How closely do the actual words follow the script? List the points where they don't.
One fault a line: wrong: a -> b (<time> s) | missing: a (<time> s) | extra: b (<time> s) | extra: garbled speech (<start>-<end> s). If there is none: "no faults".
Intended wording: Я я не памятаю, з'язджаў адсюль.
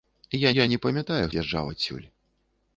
no faults